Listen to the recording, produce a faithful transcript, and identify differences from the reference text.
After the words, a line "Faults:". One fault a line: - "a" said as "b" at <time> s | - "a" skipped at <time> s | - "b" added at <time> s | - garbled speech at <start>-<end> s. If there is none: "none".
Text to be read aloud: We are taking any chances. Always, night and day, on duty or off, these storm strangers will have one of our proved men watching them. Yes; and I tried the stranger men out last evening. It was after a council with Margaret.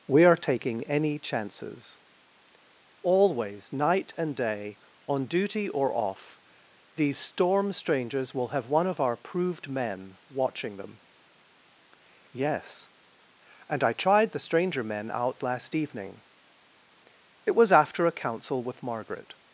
We are taking any chances. Always, night and day, on duty or off, these storm strangers will have one of our proved men watching them. Yes; and I tried the stranger men out last evening. It was after a council with Margaret.
Faults:
none